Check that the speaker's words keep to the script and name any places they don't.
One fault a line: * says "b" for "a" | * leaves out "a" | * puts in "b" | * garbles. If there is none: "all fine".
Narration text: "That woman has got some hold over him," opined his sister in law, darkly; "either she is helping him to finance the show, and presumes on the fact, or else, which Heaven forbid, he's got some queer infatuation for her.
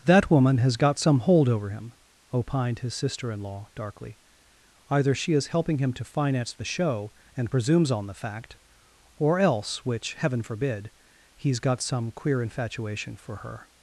all fine